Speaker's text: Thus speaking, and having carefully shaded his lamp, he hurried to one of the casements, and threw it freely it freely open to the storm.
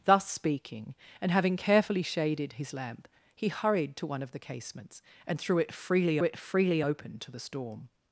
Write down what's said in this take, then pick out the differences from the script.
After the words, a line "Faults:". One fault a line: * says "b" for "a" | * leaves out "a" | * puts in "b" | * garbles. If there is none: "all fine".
Thus speaking, and having carefully shaded his lamp, he hurried to one of the casements, and threw it freely it freely open to the storm.
Faults:
all fine